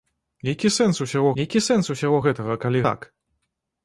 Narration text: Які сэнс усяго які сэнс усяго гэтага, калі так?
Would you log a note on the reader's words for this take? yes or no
no